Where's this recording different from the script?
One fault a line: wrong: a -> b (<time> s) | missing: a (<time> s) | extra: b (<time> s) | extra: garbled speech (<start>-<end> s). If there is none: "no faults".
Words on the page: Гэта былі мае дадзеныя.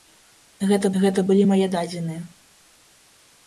extra: гэта (1.0 s)